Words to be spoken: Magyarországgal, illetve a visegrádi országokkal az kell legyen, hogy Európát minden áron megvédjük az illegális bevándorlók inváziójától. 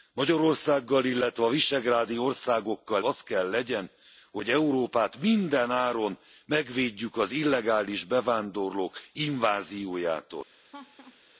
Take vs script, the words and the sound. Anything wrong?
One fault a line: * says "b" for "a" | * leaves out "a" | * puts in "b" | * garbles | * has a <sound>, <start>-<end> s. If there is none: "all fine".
* has a laugh, 10.7-11.2 s